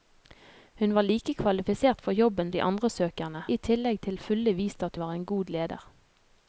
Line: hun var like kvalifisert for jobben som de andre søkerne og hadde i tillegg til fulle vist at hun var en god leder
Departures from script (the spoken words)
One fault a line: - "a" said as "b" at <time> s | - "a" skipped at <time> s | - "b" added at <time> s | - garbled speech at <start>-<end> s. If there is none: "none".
- "som" skipped at 2.5 s
- "og hadde" skipped at 3.4 s
- "hun" skipped at 5.0 s